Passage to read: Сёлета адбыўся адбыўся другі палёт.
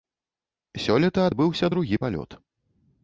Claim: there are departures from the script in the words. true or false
true